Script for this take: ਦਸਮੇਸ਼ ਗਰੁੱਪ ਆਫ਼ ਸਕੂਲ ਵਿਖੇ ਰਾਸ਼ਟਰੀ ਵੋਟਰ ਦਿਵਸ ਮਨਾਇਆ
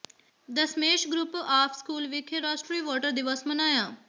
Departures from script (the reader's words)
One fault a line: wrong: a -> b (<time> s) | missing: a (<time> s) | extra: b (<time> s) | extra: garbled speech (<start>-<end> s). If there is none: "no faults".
no faults